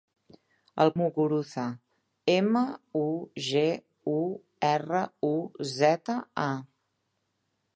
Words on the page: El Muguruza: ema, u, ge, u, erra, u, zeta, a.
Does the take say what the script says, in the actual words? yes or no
yes